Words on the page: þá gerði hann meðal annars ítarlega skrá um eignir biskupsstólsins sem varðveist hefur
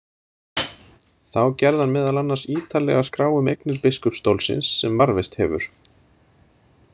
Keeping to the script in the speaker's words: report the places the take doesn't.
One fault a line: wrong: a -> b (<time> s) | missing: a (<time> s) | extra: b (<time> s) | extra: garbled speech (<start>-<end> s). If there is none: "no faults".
no faults